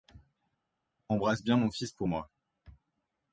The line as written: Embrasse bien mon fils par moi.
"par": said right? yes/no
no